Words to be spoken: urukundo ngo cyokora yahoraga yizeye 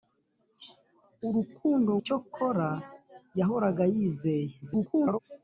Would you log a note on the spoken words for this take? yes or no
yes